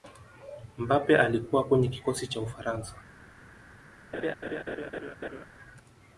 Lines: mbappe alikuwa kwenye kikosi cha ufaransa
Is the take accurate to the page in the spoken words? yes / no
yes